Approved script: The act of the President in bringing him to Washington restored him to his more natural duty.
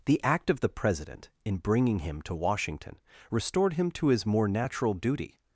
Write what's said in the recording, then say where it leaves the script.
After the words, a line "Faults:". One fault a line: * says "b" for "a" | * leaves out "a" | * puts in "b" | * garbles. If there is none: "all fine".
The act of the President in bringing him to Washington restored him to his more natural duty.
Faults:
all fine